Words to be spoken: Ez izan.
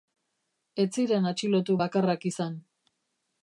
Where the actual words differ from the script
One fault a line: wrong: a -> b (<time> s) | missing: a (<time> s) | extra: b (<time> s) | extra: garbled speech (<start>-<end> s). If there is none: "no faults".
extra: ziren atxilotu bakarrak (1.0 s)